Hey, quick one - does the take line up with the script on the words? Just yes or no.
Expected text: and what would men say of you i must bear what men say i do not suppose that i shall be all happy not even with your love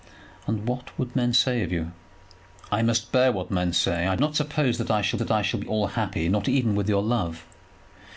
no